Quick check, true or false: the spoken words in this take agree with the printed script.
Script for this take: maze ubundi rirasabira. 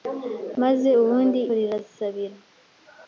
true